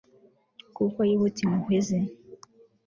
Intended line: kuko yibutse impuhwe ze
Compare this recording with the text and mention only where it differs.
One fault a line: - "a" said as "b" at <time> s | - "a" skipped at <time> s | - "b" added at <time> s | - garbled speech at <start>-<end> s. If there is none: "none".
none